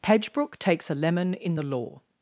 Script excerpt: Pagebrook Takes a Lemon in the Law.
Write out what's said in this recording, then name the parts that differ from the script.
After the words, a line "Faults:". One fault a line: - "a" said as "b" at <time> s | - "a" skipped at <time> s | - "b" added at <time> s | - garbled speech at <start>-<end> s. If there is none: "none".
Pagebrook Takes a Lemon in the Law.
Faults:
none